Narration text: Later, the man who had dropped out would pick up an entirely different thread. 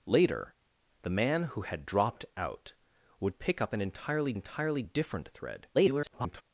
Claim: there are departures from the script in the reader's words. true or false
true